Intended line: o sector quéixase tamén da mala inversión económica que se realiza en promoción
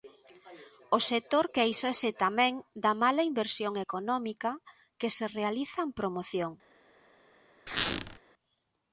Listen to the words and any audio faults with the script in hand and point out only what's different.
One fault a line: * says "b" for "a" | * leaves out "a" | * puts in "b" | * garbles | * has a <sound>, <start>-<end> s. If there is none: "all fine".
* has a squeak, 7.7-8.2 s